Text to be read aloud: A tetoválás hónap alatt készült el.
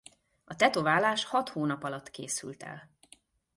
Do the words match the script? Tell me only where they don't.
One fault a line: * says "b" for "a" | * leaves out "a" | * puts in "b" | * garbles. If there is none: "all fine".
* puts in "hat"